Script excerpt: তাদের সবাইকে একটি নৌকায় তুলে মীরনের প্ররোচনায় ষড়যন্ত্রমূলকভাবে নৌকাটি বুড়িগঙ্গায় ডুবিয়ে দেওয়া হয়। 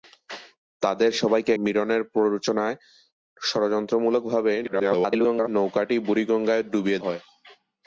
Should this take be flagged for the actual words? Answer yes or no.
yes